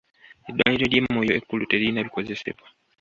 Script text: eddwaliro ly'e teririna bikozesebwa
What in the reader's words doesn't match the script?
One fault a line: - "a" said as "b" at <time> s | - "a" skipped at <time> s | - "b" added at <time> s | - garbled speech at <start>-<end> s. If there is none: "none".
- "moyo ekkulu" added at 1.1 s